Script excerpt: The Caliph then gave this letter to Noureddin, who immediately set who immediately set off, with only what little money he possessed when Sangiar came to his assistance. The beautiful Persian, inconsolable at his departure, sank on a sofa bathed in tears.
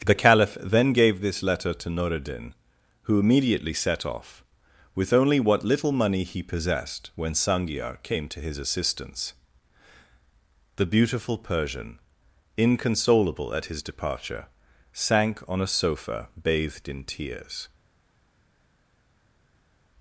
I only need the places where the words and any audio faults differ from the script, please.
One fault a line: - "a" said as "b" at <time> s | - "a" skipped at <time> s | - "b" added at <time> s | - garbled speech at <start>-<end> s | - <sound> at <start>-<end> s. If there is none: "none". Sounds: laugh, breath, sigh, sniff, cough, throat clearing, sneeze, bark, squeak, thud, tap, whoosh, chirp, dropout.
- "who immediately set" skipped at 4.0 s